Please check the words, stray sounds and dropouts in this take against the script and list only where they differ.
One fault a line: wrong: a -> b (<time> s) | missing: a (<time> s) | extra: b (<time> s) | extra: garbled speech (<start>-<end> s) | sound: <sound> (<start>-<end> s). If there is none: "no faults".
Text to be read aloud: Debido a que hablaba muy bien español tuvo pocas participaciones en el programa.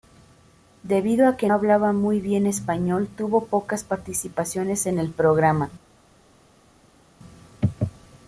no faults